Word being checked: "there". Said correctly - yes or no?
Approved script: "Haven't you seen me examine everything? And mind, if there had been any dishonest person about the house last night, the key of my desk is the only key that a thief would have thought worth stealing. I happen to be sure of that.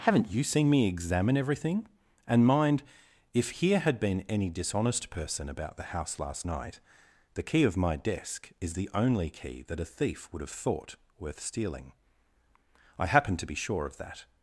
no